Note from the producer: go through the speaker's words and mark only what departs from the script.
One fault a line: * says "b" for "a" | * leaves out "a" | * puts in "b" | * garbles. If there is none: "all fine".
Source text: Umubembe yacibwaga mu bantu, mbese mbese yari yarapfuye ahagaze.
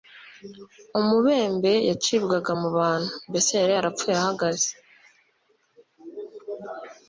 * leaves out "mbese"